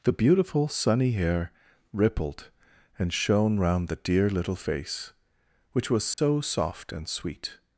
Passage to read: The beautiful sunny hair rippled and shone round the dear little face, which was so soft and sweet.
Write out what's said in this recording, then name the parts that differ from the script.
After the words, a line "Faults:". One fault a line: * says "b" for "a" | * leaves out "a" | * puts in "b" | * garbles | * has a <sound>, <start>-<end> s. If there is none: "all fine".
The beautiful sunny hair rippled and shone round the dear little face, which was so soft and sweet.
Faults:
* has a dropout, 6.1-6.2 s